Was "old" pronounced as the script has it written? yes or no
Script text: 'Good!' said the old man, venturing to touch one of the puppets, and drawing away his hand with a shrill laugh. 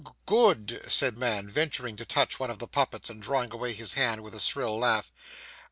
no